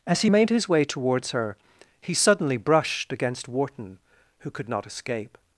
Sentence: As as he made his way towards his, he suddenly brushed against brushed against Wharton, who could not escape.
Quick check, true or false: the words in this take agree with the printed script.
false